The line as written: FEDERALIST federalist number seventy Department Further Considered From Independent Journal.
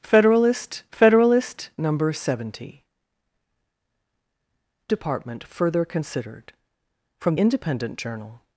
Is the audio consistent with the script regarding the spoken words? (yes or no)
yes